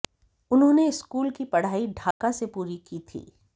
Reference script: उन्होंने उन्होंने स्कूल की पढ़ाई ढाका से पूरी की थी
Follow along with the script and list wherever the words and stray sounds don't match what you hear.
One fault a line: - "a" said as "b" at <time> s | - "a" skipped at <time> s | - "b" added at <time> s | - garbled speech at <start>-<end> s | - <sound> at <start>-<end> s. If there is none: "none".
- "उन्होंने" skipped at 0.9 s
- dropout at 2.1-2.2 s